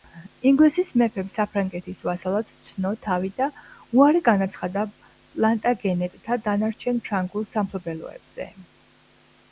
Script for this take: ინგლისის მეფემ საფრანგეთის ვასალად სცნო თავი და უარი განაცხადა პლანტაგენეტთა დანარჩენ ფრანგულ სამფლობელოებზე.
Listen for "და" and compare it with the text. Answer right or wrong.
right